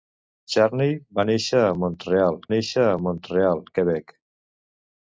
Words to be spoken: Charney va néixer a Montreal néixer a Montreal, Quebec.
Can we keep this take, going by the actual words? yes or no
yes